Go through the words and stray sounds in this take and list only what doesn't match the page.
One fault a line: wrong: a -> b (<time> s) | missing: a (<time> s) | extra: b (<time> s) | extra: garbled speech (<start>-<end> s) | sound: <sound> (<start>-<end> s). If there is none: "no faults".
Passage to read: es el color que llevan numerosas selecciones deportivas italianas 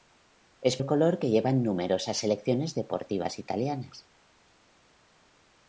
no faults